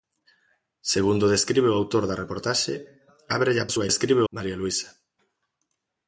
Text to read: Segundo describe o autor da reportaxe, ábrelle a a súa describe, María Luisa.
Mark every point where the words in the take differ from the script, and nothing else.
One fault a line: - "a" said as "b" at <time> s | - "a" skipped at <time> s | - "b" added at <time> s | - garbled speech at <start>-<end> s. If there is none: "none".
none